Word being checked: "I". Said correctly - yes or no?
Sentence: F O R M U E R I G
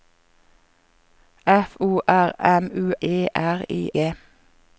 yes